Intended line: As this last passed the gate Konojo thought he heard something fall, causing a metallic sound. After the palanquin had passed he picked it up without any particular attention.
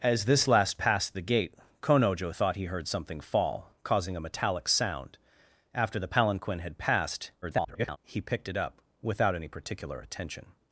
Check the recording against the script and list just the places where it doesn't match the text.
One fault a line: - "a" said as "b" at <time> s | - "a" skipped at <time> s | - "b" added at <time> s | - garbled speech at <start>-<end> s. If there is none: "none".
- garbled speech at 7.4-8.0 s